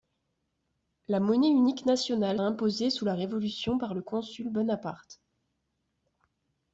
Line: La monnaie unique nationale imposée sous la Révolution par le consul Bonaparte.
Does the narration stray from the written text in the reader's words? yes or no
no